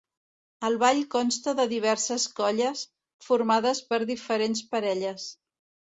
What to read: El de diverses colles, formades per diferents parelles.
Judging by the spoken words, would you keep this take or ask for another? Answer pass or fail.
fail